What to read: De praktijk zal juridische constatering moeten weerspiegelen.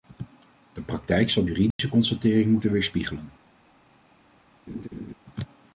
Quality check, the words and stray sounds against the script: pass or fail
fail